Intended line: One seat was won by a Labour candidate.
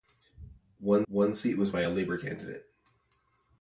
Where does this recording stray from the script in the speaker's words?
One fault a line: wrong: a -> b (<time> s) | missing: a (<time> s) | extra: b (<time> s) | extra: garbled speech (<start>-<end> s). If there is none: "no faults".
extra: one (1.1 s)
missing: won (1.7 s)